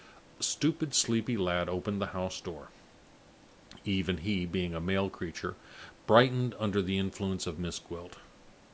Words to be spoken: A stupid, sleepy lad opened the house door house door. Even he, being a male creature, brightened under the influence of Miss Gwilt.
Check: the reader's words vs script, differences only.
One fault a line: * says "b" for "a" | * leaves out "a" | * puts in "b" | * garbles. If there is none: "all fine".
* leaves out "house door"